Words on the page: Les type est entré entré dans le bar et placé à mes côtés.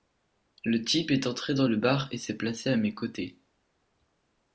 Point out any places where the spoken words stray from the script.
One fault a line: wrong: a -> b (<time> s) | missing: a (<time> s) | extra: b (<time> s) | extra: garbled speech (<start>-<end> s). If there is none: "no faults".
wrong: Les -> Le (0.7 s)
missing: entré (1.5 s)
extra: s'est (2.2 s)